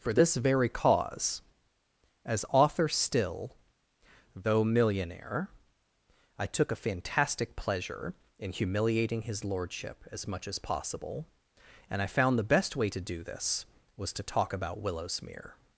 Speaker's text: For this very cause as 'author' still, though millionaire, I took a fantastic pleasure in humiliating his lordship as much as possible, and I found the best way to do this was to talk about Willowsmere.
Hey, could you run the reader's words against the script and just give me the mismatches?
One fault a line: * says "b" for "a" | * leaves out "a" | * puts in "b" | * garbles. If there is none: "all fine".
all fine